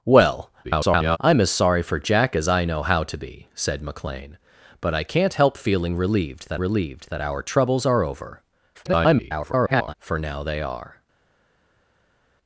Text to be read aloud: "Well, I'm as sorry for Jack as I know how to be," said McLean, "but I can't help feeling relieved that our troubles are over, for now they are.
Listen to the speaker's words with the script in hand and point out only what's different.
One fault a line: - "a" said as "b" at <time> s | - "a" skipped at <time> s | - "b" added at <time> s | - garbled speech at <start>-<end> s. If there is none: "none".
- garbled speech at 0.6-1.2 s
- "relieved that" added at 6.6 s
- garbled speech at 8.7-9.9 s